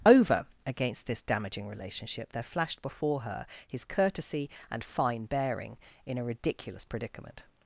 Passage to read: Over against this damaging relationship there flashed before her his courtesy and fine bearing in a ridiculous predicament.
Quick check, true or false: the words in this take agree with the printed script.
true